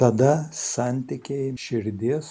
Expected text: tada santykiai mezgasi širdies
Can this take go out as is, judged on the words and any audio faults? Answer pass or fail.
fail